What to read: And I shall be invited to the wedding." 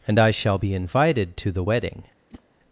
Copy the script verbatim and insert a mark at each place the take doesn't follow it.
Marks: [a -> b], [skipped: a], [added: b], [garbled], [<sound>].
And I shall be invited to the wedding." [whoosh]